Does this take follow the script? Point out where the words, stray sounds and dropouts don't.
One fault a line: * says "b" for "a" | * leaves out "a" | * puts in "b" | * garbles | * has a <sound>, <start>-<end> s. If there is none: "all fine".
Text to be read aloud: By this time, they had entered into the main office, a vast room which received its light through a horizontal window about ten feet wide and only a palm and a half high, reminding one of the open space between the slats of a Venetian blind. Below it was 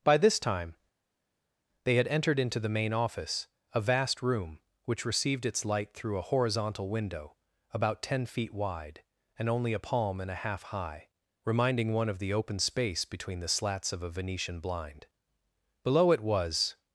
all fine